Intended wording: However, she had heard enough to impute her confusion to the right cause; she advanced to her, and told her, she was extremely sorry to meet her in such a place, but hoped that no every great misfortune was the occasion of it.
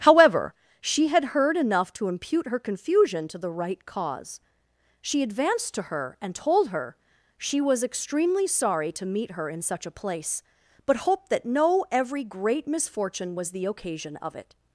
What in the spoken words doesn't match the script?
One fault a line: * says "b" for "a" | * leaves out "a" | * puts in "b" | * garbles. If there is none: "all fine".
all fine